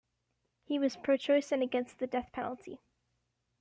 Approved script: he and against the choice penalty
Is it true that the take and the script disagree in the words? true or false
true